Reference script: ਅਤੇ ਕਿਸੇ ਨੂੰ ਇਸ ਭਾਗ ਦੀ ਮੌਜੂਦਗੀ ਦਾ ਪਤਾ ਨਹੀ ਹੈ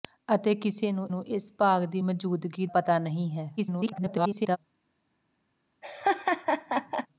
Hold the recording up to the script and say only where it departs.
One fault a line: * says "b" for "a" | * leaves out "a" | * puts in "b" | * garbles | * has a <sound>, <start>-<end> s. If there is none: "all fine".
* puts in "ਨੂੰ"
* leaves out "ਦਾ"
* garbles
* has a laugh, 5.8-7.1 s